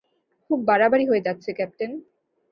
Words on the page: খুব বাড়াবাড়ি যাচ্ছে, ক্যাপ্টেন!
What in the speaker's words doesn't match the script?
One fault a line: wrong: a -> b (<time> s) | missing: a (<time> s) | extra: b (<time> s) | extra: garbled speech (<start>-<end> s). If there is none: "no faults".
extra: হয়ে (1.1 s)